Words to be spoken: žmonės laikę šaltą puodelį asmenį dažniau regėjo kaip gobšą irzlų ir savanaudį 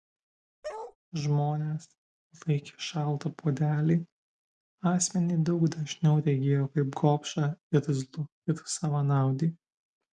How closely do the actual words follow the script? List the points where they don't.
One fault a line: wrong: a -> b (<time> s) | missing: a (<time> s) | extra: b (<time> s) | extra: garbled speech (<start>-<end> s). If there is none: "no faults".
extra: daug (5.5 s)